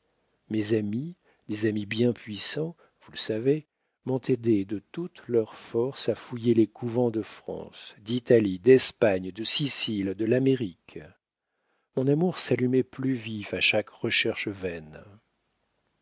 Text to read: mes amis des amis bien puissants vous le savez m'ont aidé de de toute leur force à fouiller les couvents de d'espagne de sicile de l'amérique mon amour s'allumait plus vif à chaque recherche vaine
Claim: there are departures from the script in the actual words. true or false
true